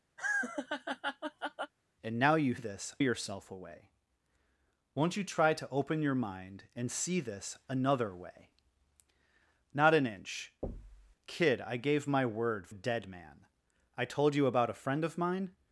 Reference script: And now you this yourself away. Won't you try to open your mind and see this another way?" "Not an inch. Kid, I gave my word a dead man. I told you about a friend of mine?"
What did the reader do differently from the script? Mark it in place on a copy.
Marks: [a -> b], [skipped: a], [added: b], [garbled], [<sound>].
[laugh] And now you this yourself away. Won't you try to open your mind and see this another way?" "Not an inch. [thud] Kid, I gave my word a dead man. I told you about a friend of mine?"